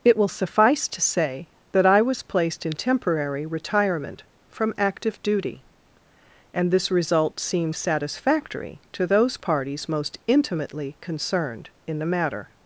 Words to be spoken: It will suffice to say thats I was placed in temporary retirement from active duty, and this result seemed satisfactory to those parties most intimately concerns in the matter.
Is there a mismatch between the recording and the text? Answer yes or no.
yes